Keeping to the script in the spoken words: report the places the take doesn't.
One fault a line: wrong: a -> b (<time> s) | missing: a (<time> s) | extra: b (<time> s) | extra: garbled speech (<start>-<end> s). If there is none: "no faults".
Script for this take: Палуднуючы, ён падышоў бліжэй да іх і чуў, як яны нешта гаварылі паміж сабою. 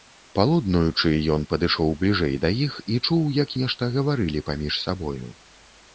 missing: яны (3.5 s)